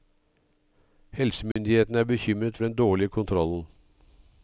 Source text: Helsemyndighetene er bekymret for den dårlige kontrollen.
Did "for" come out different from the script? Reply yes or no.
yes